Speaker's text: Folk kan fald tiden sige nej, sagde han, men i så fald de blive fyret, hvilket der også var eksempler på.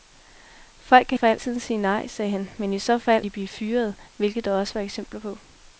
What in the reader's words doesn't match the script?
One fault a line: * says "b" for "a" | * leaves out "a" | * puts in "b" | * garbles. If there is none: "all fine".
all fine